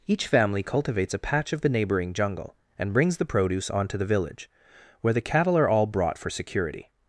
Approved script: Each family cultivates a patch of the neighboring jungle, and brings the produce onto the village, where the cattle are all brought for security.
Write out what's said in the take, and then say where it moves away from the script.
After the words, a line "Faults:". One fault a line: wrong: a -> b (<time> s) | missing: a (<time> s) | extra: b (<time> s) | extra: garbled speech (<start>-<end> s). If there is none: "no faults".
Each family cultivates a patch of the neighboring jungle, and brings the produce onto the village, where the cattle are all brought for security.
Faults:
no faults